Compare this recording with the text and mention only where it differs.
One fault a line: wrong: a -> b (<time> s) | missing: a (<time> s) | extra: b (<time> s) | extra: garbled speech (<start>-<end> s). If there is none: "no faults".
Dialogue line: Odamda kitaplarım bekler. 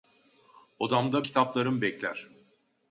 no faults